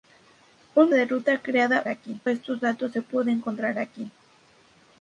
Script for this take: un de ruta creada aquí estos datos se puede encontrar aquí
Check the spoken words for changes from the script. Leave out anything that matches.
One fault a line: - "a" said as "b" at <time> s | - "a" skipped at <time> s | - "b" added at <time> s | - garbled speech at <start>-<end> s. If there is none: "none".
none